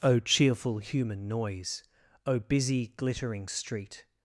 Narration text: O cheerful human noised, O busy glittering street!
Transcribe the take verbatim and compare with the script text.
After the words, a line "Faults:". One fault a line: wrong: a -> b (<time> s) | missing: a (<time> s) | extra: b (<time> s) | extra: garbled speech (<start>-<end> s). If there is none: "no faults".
O cheerful human noise, O busy glittering street!
Faults:
wrong: noised -> noise (1.3 s)